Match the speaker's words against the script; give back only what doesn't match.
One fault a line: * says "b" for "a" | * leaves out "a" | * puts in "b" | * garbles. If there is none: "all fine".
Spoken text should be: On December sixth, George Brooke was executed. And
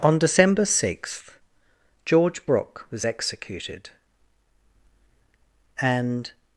all fine